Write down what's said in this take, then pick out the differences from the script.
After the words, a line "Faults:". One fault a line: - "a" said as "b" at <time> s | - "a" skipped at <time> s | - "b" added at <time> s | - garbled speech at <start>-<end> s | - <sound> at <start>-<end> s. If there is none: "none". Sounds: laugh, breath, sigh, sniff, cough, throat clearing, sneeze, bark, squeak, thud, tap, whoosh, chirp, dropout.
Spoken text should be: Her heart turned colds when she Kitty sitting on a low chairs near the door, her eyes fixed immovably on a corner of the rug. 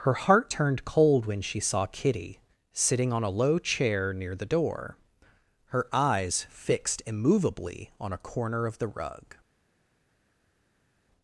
Her heart turned cold when she saw Kitty sitting on a low chair near the door, her eyes fixed immovably on a corner of the rug.
Faults:
- "colds" said as "cold" at 0.8 s
- "saw" added at 1.6 s
- "chairs" said as "chair" at 3.6 s